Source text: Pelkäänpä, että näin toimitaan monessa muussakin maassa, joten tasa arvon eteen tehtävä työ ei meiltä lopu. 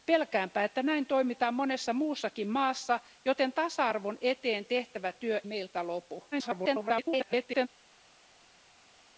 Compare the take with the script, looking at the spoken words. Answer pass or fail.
fail